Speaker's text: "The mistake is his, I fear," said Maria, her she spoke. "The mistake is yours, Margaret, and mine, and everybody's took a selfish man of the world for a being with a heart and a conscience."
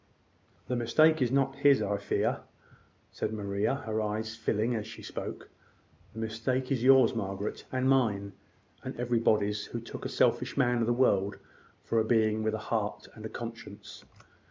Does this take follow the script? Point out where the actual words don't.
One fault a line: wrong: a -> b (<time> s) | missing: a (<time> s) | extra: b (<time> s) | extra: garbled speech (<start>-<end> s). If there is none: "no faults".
extra: not (1.3 s)
extra: eyes filling as (4.0 s)
extra: who (9.7 s)